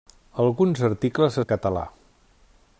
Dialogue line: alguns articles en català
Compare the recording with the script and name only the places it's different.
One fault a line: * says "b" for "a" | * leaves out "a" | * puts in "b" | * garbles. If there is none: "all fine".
all fine